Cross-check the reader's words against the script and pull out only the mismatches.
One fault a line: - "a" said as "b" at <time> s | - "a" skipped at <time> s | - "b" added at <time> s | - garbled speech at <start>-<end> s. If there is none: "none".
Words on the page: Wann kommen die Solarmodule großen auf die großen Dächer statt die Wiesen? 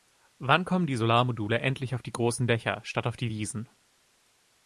- "großen" said as "endlich" at 1.6 s
- "auf" added at 3.0 s